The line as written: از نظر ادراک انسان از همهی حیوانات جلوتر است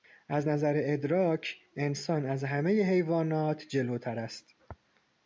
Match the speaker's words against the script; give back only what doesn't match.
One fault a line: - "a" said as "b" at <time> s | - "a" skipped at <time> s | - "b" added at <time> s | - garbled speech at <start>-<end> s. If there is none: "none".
none